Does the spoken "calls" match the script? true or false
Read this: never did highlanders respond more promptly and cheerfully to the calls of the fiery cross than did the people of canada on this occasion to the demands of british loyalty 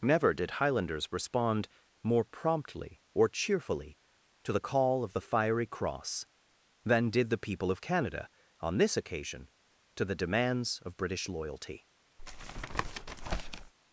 false